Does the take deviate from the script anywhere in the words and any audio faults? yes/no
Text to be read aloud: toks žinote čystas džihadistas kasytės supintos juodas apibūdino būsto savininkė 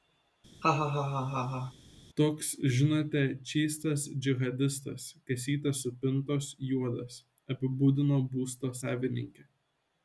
yes